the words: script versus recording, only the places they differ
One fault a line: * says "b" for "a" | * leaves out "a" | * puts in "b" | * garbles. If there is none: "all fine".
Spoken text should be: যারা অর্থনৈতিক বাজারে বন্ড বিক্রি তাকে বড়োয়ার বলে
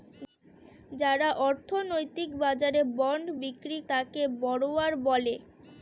all fine